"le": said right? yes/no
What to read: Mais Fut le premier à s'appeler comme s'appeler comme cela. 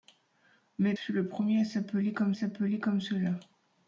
yes